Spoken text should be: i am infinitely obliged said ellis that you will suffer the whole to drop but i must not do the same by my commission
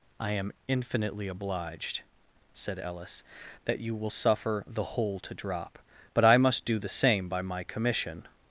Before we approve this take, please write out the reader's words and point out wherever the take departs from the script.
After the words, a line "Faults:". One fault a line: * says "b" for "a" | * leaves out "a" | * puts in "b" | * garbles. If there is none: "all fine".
i am infinitely obliged said ellis that you will suffer the whole to drop but i must do the same by my commission
Faults:
* leaves out "not"